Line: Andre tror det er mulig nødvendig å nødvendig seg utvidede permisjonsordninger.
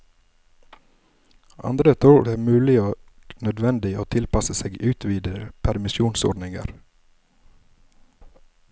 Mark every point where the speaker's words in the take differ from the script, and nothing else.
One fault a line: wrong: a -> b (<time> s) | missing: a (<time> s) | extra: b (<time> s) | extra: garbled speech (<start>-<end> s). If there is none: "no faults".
extra: og (2.8 s)
wrong: nødvendig -> tilpasse (4.1 s)